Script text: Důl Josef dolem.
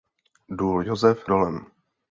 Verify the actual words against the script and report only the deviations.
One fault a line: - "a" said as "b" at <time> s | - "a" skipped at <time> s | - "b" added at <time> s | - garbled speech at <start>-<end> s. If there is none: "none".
none